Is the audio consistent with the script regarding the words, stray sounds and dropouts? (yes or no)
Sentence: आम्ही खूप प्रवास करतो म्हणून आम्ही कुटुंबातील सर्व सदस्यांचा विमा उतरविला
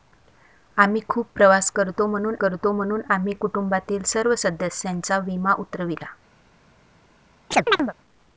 no